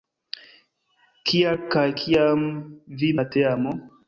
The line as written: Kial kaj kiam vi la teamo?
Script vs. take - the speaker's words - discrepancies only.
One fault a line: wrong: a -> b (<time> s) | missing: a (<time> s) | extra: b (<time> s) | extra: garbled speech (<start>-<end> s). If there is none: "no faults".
no faults